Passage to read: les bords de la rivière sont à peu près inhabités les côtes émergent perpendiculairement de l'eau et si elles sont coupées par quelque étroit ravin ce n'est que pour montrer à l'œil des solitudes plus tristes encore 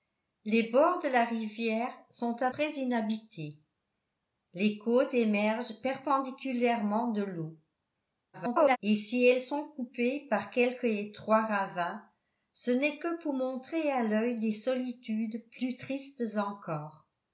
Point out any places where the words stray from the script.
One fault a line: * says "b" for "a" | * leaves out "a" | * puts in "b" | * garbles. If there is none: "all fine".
* leaves out "peu"
* garbles